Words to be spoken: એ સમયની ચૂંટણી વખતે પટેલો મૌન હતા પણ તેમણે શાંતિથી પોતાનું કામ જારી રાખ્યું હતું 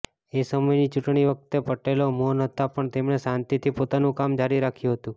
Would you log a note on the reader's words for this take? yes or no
no